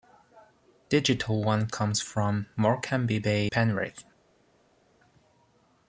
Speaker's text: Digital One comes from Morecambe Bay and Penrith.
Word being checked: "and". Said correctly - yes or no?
no